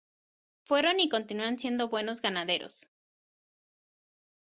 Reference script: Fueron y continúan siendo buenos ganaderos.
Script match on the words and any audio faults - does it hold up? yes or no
yes